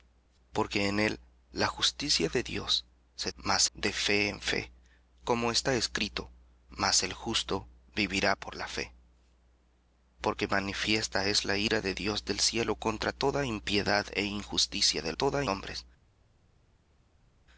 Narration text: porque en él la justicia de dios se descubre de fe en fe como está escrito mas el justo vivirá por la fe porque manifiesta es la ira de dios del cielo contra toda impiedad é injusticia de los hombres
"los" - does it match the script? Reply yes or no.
no